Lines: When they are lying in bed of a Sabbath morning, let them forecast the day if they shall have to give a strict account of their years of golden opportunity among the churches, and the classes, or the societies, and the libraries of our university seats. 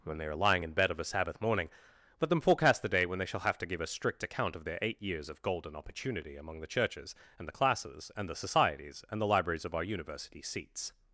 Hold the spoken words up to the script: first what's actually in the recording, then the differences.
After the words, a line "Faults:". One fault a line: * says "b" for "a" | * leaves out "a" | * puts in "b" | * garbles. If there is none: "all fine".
When they are lying in bed of a Sabbath morning, let them forecast the day when they shall have to give a strict account of their eight years of golden opportunity among the churches, and the classes, and the societies, and the libraries of our university seats.
Faults:
* says "when" for "if"
* puts in "eight"
* says "and" for "or"